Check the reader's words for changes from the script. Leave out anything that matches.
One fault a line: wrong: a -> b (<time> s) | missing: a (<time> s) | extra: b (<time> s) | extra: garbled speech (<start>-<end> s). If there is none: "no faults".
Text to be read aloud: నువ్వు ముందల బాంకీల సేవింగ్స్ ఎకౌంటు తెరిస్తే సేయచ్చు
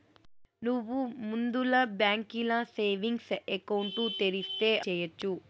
no faults